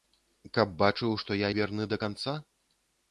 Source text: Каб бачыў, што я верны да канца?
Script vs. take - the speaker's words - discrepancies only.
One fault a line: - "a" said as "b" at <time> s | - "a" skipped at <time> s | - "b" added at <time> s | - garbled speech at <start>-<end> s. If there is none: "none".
none